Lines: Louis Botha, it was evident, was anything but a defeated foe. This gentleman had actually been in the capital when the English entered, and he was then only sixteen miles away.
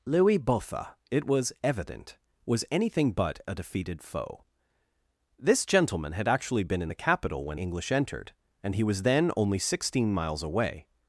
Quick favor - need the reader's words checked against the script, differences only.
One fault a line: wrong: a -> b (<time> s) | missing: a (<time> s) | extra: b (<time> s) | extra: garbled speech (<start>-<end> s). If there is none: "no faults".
missing: the (7.6 s)